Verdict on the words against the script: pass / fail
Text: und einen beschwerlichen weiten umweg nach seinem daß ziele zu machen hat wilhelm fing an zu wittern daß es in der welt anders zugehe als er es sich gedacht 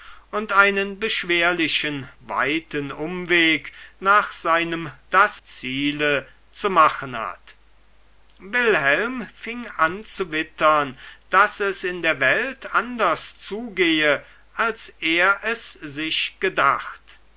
pass